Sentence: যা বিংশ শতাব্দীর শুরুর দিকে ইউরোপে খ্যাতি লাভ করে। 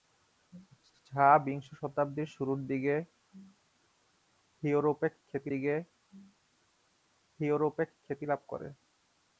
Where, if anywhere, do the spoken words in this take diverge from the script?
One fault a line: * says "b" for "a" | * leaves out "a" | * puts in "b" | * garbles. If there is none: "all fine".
* puts in "দিকে ইউরোপে খ্যাতি"